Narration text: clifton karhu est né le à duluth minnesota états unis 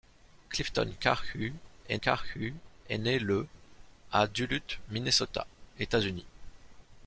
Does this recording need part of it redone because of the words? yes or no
yes